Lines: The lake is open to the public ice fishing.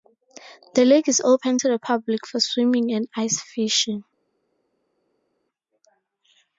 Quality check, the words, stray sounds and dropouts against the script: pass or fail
fail